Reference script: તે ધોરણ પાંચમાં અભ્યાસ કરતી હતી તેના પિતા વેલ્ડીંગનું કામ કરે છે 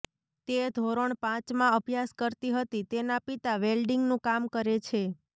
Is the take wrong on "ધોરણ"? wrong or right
right